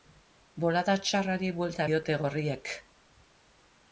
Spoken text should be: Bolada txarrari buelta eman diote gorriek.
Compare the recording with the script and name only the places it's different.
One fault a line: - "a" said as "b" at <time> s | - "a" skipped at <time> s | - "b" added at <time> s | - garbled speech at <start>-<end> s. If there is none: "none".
- "eman" skipped at 1.9 s